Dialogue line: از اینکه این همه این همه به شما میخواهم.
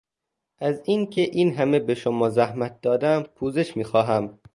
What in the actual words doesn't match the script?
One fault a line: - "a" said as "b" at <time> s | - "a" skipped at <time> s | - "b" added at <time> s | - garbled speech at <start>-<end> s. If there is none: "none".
- "این همه به شما" said as "به شما زحمت دادم پوزش" at 1.8 s